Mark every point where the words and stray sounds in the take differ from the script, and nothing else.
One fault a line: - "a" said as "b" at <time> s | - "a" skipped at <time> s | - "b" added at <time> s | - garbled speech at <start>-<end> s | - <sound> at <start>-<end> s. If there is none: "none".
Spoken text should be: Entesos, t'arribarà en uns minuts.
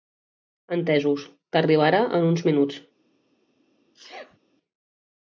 - sneeze at 3.9-4.4 s